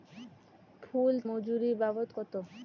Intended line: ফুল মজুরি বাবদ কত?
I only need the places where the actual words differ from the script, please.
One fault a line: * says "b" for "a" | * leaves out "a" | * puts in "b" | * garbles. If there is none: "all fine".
all fine